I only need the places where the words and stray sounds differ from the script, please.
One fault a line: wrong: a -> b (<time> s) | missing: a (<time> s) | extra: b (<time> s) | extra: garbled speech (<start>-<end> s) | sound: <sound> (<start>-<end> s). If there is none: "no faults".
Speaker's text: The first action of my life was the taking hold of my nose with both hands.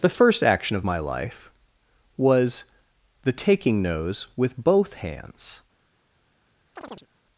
missing: hold of my (3.8 s)
sound: chirp (6.8-7.1 s)